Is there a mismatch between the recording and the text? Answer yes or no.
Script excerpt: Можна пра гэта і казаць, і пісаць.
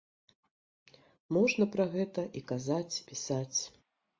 yes